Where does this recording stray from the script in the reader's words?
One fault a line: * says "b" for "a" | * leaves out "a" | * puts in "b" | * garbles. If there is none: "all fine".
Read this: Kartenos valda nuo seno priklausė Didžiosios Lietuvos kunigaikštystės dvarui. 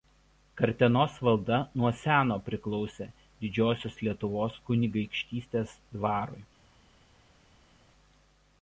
all fine